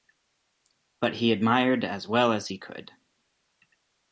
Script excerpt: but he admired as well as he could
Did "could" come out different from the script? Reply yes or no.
no